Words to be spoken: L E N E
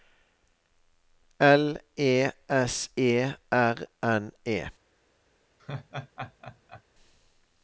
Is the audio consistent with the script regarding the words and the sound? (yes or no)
no